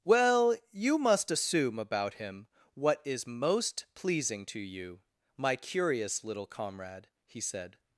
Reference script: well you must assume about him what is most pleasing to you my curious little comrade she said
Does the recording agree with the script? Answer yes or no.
no